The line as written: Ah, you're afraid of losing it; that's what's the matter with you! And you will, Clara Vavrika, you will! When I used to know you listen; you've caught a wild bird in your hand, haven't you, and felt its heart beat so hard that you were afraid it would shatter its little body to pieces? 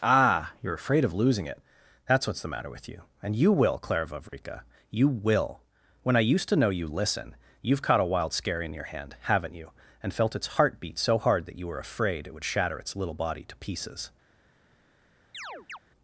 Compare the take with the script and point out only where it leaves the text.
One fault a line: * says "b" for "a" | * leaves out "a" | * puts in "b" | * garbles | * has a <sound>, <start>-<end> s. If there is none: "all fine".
* has a dropout, 4.3-4.3 s
* says "scary" for "bird"
* has a chirp, 15.3-15.8 s